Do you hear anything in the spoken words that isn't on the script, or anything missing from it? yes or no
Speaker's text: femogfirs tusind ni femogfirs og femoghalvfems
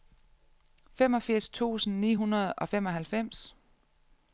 yes